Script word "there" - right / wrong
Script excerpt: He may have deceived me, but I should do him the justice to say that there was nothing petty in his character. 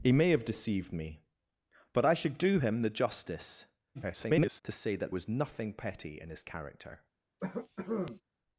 wrong